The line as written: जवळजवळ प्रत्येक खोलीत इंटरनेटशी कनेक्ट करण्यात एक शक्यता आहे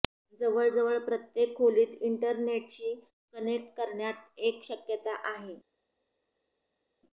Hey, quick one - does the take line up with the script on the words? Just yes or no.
yes